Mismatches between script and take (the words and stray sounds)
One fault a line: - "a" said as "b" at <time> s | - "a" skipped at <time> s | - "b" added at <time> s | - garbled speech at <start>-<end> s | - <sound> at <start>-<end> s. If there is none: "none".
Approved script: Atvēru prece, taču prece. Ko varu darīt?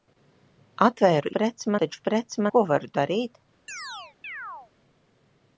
- chirp at 3.7-4.7 s